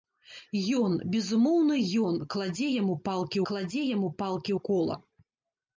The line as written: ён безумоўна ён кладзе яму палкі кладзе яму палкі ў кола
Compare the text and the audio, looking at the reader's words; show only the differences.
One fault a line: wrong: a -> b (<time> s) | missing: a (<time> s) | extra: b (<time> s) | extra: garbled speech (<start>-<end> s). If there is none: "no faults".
no faults